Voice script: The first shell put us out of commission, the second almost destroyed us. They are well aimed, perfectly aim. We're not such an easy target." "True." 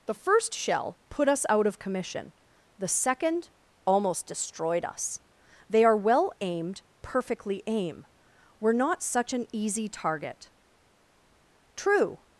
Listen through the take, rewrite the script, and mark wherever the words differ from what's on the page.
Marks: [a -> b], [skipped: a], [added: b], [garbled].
The first shell put us out of commission, the second almost destroyed us. They are well aimed, perfectly aim. We're not such an easy target." "True."